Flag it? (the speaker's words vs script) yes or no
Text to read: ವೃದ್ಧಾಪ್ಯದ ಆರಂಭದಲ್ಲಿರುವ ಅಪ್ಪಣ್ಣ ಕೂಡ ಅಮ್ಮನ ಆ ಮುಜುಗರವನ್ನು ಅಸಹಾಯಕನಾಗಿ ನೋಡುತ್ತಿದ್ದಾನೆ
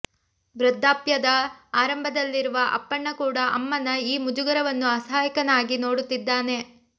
yes